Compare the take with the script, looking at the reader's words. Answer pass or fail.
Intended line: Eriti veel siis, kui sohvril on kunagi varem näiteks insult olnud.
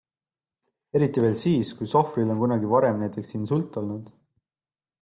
pass